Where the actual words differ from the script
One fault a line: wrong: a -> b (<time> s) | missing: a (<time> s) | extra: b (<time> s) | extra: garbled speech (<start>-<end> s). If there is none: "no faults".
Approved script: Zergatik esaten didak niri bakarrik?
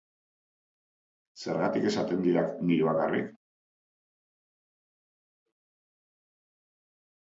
no faults